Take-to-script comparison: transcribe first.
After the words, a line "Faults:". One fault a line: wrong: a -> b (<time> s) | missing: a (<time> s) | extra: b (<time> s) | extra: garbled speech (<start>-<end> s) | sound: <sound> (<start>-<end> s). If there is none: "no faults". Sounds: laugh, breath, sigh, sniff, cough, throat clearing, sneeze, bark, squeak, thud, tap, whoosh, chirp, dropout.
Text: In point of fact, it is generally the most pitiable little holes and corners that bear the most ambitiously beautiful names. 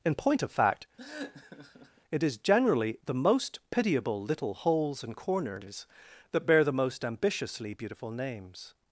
In point of fact, it is generally the most pitiable little holes and corners that bear the most ambitiously beautiful names.
Faults:
sound: laugh (1.0-2.0 s)